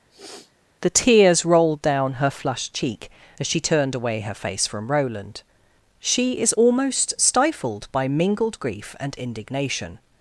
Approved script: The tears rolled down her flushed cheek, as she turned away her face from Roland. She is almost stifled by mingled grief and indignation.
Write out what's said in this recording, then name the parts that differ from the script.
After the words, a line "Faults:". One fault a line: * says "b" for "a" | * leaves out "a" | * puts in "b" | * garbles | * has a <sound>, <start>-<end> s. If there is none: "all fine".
The tears rolled down her flushed cheek, as she turned away her face from Roland. She is almost stifled by mingled grief and indignation.
Faults:
* has a sniff, 0.1-0.5 s